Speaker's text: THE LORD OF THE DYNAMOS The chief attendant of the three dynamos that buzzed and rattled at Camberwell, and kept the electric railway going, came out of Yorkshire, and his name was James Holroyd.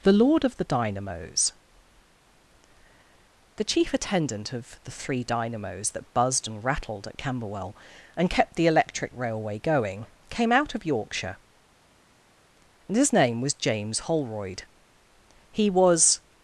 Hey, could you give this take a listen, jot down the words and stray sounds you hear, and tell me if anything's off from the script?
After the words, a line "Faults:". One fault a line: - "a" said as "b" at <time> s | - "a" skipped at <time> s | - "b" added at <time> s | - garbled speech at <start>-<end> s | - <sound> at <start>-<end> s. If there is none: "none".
THE LORD OF THE DYNAMOS The chief attendant of the three dynamos that buzzed and rattled at Camberwell, and kept the electric railway going, came out of Yorkshire, and his name was James Holroyd. He was
Faults:
- "He was" added at 15.5 s